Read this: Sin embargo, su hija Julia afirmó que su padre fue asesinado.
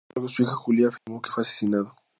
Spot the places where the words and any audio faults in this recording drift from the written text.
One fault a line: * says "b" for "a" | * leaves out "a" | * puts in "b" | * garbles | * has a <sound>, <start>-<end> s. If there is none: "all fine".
* has a dropout, 1.0-1.1 s
* leaves out "su padre"